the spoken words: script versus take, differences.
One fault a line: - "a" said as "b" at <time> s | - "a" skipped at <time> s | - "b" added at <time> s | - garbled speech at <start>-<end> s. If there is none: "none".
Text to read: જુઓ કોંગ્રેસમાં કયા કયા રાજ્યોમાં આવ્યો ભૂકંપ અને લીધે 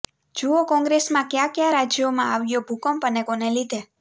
- "કોને" added at 3.2 s